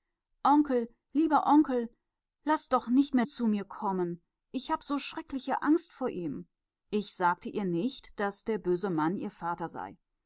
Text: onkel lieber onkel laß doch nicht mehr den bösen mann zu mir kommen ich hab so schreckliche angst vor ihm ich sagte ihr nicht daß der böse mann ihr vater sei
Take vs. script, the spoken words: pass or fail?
fail